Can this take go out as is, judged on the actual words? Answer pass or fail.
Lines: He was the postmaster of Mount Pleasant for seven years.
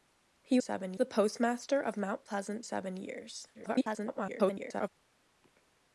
fail